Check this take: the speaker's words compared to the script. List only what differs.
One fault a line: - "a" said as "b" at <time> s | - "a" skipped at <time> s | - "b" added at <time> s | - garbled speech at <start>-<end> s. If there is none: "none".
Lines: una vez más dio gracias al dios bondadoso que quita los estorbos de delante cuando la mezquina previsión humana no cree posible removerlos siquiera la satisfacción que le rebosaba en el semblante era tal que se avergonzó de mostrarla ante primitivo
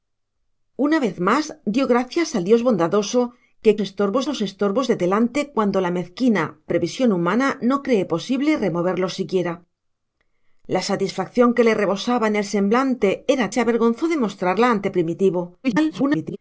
- "quita" said as "estorbos" at 3.8 s
- "tal que" skipped at 13.5 s
- garbled speech at 15.6-16.4 s